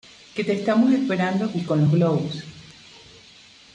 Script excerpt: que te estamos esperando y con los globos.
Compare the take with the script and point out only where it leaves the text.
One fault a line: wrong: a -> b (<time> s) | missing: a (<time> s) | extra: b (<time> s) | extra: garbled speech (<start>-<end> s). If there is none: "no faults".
no faults